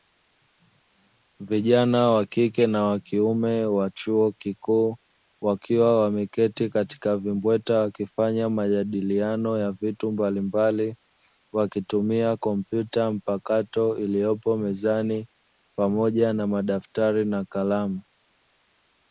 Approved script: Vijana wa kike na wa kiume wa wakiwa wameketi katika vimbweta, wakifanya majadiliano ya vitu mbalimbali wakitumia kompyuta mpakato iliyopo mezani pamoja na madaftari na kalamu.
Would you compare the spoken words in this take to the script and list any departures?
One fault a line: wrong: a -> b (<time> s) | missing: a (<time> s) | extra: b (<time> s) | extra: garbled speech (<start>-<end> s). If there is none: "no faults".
extra: chuo kikuu (3.9 s)